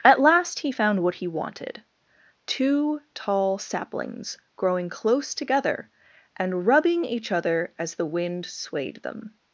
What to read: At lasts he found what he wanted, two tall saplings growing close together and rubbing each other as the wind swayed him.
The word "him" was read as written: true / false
false